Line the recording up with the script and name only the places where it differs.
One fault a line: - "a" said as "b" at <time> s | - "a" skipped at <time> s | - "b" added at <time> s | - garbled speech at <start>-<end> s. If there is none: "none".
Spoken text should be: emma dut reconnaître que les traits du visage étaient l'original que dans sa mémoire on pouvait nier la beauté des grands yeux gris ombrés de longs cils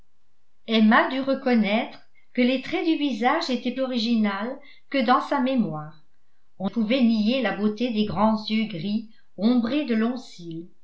none